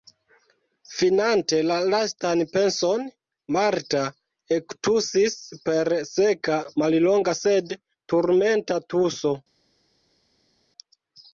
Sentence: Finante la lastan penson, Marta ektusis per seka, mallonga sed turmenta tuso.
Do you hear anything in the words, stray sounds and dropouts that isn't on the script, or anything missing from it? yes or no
no